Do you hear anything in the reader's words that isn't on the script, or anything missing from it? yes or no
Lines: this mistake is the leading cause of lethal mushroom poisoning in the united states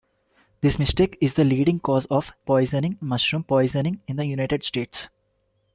yes